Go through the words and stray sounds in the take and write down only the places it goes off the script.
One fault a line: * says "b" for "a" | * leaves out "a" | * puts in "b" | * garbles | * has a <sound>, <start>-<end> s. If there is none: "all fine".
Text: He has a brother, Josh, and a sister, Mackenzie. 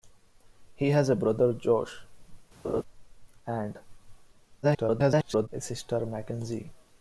* has a laugh, 2.6-2.8 s
* garbles